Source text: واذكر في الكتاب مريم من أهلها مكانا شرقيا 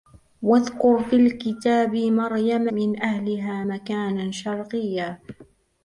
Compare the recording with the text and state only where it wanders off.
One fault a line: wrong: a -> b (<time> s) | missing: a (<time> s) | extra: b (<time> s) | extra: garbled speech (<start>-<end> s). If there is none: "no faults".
no faults